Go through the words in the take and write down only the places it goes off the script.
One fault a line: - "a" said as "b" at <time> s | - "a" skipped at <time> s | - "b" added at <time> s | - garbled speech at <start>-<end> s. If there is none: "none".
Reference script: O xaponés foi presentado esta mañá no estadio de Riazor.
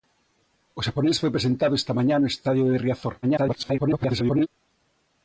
- garbled speech at 3.2-4.5 s